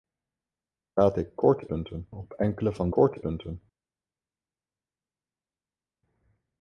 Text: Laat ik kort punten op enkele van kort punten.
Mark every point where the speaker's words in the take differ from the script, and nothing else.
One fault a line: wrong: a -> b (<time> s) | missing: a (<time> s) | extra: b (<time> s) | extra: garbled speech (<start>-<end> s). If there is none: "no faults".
no faults